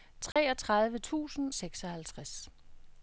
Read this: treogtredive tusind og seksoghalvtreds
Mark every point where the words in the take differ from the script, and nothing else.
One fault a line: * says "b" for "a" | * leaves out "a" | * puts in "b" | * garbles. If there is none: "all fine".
* leaves out "og"